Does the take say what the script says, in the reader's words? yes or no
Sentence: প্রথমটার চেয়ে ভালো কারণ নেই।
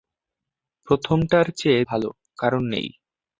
yes